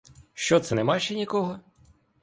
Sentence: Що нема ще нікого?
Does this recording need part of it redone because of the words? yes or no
yes